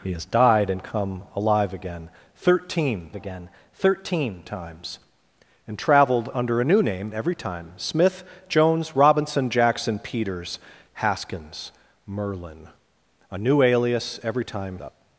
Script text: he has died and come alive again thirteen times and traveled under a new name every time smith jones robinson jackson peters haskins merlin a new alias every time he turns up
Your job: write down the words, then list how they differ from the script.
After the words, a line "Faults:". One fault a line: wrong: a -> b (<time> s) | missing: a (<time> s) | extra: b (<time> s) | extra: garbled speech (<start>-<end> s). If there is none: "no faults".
he has died and come alive again thirteen again thirteen times and traveled under a new name every time smith jones robinson jackson peters haskins merlin a new alias every time up
Faults:
extra: again thirteen (3.1 s)
missing: he turns (14.8 s)